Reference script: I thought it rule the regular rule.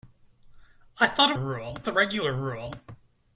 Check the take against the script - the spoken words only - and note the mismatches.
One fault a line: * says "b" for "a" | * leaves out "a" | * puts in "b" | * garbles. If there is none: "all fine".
all fine